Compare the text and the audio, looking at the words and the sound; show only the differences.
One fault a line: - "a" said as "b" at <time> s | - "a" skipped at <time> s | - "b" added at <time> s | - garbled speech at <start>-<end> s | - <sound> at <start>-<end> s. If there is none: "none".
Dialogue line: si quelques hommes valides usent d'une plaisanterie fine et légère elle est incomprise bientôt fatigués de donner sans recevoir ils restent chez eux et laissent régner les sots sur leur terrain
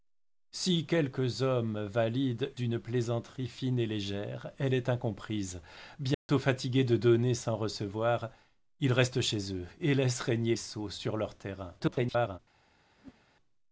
- "usent" skipped at 2.5 s
- dropout at 6.1-6.3 s
- "les" skipped at 10.5 s
- garbled speech at 11.8-12.4 s
- whoosh at 13.0-13.2 s